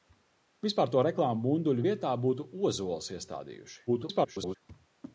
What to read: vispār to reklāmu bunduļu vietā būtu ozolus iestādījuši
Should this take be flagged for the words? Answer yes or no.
yes